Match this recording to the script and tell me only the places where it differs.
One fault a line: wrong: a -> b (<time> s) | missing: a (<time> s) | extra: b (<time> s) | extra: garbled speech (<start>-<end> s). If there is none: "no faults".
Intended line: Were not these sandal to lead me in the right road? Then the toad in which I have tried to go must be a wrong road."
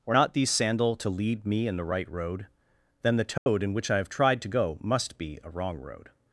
no faults